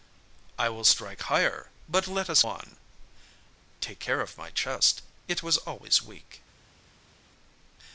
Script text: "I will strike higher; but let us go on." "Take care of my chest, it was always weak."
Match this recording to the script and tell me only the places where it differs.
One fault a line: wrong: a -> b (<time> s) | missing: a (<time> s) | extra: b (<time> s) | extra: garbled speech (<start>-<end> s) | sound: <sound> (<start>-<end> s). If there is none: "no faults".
missing: go (2.4 s)